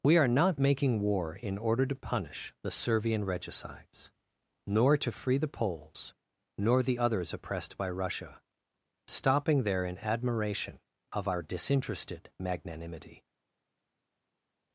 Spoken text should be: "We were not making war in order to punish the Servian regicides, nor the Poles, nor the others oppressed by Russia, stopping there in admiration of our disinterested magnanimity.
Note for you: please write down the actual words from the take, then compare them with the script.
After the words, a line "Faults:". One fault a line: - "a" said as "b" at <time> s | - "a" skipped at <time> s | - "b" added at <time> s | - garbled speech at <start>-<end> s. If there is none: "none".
"We are not making war in order to punish the Servian regicides, nor to free the Poles, nor the others oppressed by Russia, stopping there in admiration of our disinterested magnanimity.
Faults:
- "were" said as "are" at 0.2 s
- "to free" added at 5.0 s